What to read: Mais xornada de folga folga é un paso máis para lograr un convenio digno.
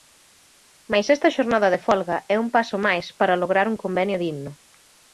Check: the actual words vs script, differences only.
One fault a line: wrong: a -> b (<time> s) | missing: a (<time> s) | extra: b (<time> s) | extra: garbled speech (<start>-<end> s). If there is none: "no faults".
extra: esta (1.1 s)
missing: folga (2.2 s)